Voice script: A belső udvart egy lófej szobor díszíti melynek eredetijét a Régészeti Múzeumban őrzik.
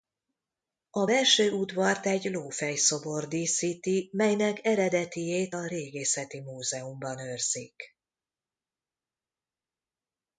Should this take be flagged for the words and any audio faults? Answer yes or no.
no